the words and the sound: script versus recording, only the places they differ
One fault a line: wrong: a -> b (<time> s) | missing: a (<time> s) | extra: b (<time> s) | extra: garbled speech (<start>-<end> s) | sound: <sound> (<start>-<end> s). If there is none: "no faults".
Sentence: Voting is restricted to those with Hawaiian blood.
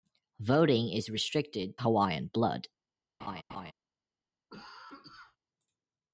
missing: to those with (1.8 s)
sound: laugh (3.2-3.7 s)
sound: cough (4.5-5.4 s)